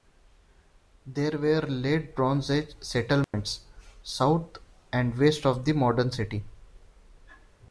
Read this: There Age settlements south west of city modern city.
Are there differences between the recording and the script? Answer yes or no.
yes